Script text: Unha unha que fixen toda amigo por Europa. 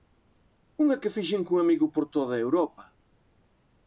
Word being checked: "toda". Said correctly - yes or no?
no